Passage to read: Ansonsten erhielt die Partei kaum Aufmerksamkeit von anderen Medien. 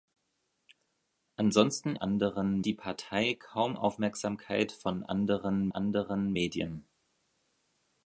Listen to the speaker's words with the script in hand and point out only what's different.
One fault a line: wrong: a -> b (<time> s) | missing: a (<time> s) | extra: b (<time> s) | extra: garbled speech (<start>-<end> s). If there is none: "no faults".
wrong: erhielt -> anderen (1.9 s)
extra: anderen (5.7 s)